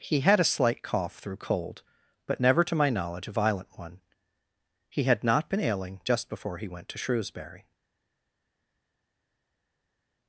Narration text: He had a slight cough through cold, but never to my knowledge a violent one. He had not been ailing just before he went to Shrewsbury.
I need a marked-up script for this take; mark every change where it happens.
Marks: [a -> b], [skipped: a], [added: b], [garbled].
He had a slight cough through cold, but never to my knowledge a violent one. He had not been ailing just before he went to Shrewsbury.